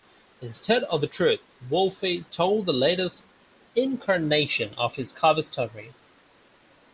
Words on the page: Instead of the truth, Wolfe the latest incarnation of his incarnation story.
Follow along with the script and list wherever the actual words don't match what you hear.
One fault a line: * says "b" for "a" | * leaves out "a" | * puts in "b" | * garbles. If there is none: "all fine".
* puts in "told"
* says "cover" for "incarnation"